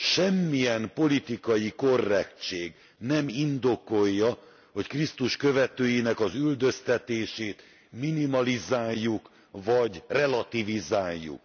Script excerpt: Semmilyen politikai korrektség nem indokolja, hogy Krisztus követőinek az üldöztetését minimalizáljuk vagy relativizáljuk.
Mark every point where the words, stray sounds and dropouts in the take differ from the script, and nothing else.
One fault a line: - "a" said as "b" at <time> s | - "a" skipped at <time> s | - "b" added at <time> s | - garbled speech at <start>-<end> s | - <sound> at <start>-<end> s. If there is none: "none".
none